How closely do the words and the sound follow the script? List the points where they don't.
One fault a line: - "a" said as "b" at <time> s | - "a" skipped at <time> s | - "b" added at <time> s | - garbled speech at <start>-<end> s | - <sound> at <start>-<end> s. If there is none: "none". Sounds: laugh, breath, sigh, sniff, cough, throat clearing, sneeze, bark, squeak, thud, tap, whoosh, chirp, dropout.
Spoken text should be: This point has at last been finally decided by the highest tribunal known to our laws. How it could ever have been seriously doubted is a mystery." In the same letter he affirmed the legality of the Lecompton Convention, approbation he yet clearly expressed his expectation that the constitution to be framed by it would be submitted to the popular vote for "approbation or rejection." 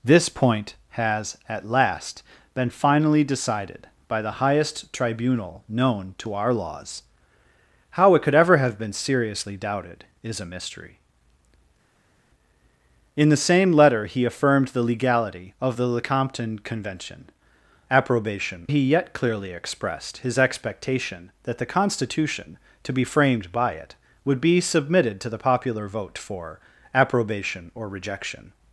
none